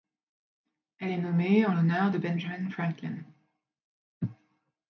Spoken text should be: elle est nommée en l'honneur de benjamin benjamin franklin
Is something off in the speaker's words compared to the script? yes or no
yes